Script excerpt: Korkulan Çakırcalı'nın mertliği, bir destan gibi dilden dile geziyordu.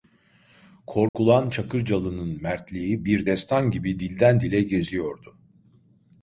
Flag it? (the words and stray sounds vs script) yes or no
yes